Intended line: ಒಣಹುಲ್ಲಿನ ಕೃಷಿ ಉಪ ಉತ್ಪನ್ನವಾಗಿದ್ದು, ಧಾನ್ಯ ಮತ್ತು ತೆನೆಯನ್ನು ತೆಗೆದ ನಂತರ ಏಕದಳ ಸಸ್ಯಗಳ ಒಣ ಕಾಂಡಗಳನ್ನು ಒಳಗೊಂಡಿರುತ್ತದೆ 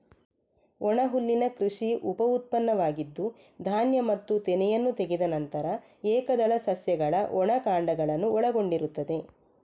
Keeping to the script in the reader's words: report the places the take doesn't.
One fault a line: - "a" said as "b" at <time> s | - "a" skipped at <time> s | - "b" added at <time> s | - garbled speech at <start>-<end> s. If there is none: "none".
none